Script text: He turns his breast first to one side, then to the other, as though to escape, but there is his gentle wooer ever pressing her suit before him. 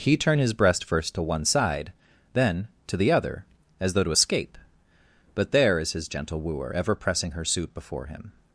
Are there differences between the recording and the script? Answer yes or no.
yes